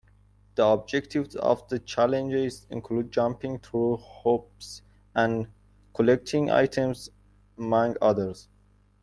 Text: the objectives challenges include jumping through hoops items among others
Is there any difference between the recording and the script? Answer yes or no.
yes